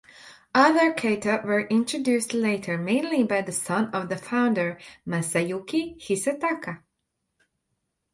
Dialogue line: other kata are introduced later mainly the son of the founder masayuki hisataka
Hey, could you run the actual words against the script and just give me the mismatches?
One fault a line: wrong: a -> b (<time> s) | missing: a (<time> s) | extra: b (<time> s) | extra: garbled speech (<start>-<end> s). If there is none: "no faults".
wrong: are -> were (1.4 s)
extra: by (3.2 s)